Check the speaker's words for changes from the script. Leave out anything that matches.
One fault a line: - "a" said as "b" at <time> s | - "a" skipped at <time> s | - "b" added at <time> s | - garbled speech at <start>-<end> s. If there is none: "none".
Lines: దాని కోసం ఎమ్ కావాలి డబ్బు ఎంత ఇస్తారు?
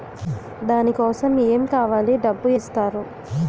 - "ఎంత" skipped at 2.5 s